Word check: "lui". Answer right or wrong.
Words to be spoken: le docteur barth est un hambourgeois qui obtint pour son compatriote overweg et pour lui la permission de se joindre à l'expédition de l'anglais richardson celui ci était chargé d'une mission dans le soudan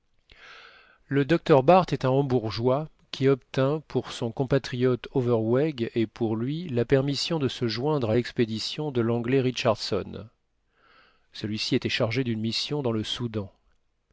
right